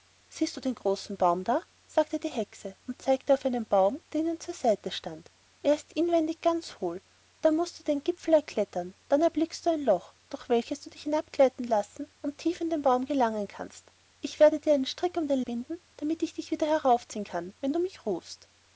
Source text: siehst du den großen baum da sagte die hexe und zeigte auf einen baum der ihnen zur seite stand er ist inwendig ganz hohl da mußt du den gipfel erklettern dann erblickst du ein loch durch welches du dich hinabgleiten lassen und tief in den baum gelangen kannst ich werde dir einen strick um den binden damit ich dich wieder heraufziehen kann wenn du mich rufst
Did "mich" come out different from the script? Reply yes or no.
no